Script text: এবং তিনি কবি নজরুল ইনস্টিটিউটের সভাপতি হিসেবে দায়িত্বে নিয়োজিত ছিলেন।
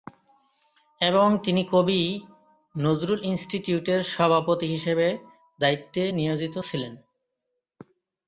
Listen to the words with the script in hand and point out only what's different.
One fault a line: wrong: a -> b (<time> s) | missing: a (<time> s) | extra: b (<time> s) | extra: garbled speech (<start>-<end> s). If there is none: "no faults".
no faults